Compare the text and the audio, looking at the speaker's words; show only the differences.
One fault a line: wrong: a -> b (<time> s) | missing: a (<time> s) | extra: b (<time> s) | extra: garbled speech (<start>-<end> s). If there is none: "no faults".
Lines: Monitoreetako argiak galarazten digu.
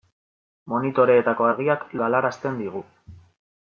no faults